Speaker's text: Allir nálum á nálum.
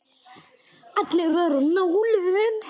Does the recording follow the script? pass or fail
fail